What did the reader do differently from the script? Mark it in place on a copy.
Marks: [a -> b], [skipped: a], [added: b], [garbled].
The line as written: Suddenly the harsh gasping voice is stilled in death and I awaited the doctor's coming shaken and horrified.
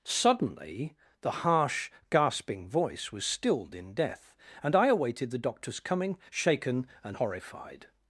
Suddenly the harsh gasping voice [is -> was] stilled in death and I awaited the doctor's coming shaken and horrified.